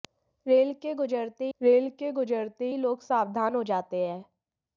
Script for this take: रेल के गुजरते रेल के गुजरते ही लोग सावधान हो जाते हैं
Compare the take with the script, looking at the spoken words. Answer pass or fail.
pass